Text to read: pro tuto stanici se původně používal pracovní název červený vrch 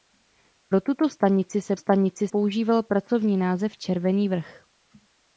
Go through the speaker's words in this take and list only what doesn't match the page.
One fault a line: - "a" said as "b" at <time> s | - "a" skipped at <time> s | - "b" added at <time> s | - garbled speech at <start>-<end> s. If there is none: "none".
- "původně" said as "stanici" at 1.8 s